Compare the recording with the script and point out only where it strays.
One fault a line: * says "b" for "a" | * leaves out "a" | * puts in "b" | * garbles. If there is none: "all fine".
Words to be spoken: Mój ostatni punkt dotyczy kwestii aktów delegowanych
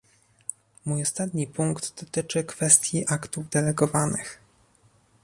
all fine